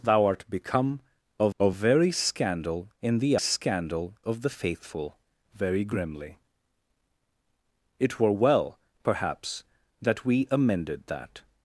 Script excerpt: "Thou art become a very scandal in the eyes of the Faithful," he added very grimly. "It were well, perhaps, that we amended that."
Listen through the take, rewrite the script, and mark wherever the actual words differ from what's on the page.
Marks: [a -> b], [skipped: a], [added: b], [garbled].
"Thou art become a [added: a] very scandal in the [eyes -> scandal] of the Faithful," [skipped: he added] very grimly. "It were well, perhaps, that we amended that."